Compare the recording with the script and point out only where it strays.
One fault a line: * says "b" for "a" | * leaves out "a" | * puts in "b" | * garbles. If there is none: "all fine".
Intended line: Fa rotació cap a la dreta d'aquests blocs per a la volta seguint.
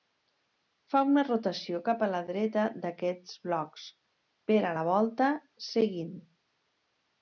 * puts in "una"